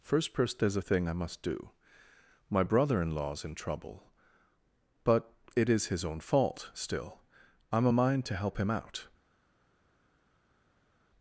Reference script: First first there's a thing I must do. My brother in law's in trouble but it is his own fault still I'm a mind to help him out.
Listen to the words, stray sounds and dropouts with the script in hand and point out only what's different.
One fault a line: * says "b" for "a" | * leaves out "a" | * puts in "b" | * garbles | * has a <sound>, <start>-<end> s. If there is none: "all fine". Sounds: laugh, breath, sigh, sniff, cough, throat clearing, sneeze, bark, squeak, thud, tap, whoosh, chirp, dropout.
all fine